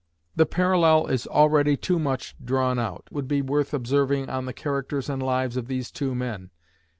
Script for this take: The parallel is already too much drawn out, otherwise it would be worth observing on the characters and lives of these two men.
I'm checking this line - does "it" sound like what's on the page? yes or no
no